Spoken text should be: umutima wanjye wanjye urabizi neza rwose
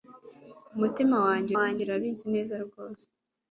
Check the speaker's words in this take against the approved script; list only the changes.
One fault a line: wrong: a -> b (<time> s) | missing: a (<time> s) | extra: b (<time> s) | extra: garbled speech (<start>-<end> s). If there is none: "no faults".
no faults